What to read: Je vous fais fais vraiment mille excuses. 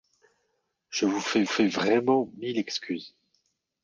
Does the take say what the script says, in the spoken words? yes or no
yes